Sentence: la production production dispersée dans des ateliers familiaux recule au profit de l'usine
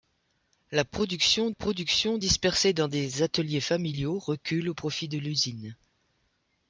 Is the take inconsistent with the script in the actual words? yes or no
no